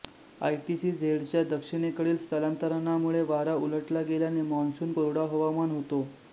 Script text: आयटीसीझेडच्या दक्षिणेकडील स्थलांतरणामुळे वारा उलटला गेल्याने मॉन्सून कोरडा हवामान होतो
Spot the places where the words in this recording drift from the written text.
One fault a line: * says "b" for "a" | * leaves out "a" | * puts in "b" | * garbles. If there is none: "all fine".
all fine